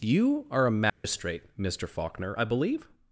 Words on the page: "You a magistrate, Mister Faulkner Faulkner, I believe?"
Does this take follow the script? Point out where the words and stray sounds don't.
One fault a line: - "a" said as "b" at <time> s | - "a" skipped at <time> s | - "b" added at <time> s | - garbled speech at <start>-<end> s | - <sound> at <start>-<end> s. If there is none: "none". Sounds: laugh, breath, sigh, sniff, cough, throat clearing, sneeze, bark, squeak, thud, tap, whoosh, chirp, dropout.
- "are" added at 0.5 s
- dropout at 0.9-1.0 s
- "Faulkner" skipped at 2.3 s